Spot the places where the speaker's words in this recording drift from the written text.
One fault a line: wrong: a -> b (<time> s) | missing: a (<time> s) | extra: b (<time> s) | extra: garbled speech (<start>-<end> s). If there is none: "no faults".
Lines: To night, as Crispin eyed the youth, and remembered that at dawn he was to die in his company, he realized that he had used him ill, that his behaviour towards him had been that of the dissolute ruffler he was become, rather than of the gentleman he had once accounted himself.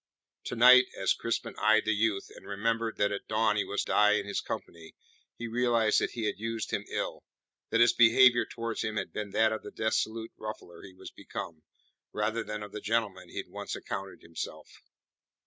missing: to (3.8 s)